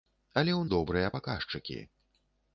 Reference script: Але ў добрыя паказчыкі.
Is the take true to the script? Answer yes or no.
yes